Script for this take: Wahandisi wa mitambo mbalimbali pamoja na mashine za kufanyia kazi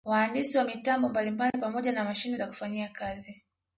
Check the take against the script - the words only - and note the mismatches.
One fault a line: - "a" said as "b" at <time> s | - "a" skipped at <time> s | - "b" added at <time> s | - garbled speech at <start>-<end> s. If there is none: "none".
none